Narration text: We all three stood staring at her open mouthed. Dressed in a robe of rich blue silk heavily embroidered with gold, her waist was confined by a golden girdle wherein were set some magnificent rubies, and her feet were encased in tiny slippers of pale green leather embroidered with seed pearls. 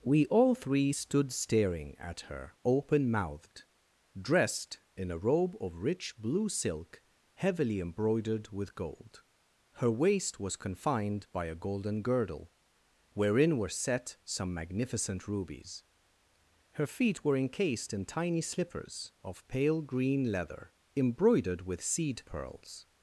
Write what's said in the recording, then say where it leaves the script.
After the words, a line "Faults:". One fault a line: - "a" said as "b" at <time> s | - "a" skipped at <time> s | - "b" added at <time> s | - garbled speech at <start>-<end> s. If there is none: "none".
We all three stood staring at her open mouthed. Dressed in a robe of rich blue silk heavily embroidered with gold, her waist was confined by a golden girdle wherein were set some magnificent rubies, her feet were encased in tiny slippers of pale green leather embroidered with seed pearls.
Faults:
- "and" skipped at 15.8 s